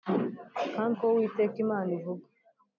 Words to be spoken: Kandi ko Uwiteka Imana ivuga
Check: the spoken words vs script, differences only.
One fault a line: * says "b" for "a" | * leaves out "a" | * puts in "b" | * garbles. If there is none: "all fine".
all fine